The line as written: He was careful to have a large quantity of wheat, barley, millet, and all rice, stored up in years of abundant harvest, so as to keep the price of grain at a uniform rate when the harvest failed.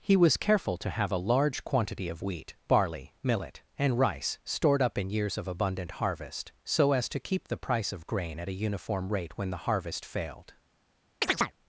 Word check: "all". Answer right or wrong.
wrong